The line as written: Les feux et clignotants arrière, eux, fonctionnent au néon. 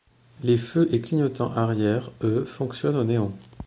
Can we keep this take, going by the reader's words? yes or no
yes